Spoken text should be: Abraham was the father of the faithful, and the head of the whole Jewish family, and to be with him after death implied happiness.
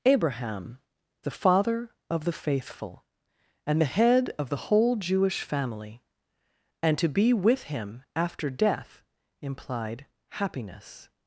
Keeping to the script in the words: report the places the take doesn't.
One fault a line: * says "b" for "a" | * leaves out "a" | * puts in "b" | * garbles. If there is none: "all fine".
* leaves out "was"